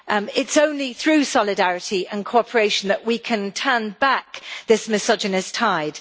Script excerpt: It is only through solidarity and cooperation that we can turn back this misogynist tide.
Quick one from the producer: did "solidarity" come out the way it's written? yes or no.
yes